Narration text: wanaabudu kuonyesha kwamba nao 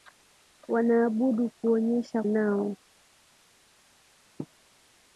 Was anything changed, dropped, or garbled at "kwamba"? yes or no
yes